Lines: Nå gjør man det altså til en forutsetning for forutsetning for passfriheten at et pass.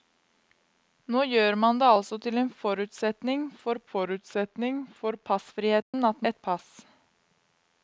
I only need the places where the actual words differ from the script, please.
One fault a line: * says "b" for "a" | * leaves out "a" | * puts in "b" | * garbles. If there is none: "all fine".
all fine